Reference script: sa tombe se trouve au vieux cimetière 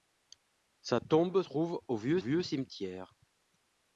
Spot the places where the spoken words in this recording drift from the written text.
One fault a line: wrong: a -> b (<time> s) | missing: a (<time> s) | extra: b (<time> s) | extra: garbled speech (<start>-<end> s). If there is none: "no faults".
missing: se (1.4 s)
extra: vieux (2.2 s)